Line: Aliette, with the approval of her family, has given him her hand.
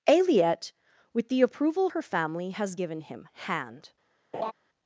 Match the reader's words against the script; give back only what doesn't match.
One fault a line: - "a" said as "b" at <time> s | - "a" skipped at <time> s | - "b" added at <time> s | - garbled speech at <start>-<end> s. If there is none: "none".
- "of" skipped at 1.9 s
- "her" skipped at 3.3 s